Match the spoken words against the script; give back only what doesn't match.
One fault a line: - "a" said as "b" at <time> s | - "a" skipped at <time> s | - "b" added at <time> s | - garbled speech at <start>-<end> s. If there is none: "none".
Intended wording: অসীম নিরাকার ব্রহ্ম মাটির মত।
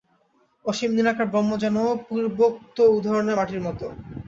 - "যেন পূর্বোক্ত উদাহরণের" added at 1.6 s